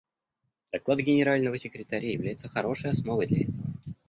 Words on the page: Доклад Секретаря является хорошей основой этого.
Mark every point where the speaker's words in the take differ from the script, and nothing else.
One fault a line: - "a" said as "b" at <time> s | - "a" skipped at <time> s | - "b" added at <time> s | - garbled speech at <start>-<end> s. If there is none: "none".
- "Генерального" added at 1.0 s
- "для" added at 3.2 s